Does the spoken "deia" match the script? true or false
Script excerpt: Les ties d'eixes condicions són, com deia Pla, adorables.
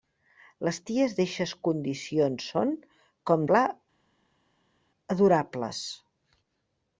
false